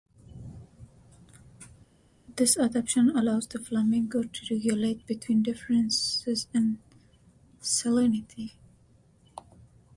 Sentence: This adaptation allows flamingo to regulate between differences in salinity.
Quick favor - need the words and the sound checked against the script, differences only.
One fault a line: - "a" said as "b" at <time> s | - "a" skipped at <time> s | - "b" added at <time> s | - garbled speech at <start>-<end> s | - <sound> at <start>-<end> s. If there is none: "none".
- "the" added at 3.5 s